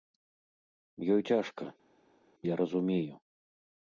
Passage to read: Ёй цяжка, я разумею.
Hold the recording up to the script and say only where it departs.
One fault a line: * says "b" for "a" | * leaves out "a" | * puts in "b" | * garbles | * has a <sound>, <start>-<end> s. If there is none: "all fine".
all fine